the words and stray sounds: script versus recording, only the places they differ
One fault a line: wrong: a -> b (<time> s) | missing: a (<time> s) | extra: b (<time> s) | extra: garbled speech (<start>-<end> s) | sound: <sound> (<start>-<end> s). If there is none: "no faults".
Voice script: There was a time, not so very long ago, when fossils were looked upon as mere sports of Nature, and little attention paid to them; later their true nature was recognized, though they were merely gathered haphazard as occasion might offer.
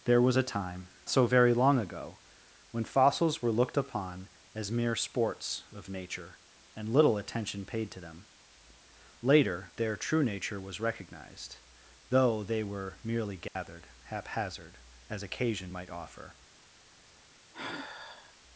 missing: not (0.9 s)
sound: dropout (13.5-13.6 s)
sound: sigh (17.5-18.4 s)